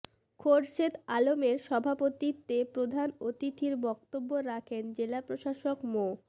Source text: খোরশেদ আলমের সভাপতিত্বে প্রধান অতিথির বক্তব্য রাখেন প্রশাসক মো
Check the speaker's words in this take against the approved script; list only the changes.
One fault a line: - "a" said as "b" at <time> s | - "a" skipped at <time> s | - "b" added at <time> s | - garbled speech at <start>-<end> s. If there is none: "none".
- "জেলা" added at 5.0 s